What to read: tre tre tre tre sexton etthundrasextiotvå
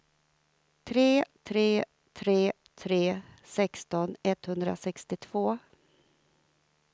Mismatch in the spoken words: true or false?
false